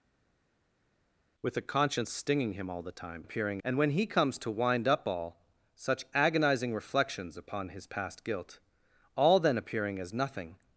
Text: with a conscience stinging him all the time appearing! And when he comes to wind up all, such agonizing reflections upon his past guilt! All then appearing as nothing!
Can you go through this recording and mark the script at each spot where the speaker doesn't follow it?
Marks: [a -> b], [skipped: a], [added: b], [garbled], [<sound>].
with a conscience stinging him all the time appearing! And when he comes to wind up all, such agonizing reflections upon his past guilt! All then appearing as nothing!